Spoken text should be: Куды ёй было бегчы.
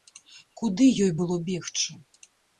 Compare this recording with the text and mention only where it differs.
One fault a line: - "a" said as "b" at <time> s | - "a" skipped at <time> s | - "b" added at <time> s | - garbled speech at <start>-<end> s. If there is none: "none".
none